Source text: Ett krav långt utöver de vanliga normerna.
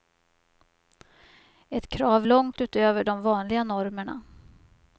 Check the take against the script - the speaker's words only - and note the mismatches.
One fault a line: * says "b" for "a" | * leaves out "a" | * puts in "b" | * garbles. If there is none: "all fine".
all fine